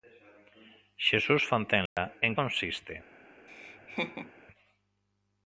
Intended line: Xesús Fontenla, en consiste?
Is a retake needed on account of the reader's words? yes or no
no